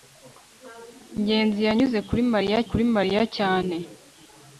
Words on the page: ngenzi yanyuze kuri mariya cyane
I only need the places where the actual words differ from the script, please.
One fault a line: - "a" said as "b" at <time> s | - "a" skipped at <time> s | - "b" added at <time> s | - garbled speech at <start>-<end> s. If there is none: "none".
- "kuri mariya" added at 2.7 s